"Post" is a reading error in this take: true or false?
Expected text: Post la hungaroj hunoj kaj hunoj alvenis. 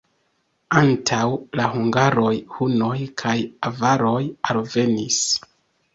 true